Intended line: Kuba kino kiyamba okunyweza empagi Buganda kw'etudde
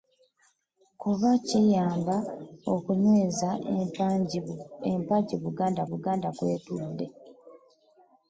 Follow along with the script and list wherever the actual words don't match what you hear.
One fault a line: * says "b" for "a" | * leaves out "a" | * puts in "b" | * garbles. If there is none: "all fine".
* leaves out "kino"
* puts in "Buganda"